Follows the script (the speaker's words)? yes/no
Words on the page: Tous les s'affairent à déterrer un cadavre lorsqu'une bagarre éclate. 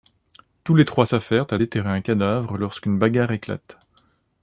no